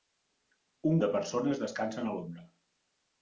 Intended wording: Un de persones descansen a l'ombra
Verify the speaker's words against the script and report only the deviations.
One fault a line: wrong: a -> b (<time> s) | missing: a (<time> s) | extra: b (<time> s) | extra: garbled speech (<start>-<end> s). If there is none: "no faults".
no faults